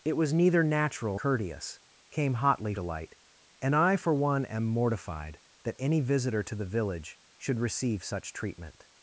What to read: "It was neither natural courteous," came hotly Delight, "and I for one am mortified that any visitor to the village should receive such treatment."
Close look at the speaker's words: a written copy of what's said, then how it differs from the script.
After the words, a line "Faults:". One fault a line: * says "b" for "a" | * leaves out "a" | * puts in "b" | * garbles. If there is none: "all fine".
"It was neither natural courteous," came hotly Delight, "and I for one am mortified that any visitor to the village should receive such treatment."
Faults:
all fine